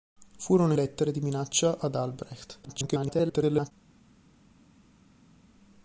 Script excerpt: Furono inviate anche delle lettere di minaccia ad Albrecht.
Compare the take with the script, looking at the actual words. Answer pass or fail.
fail